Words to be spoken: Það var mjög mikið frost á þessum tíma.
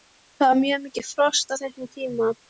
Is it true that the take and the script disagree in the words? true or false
false